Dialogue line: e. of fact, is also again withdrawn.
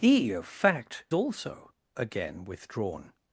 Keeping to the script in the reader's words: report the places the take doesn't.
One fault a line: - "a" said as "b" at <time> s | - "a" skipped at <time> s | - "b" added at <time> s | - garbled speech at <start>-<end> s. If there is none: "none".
- "is" skipped at 1.1 s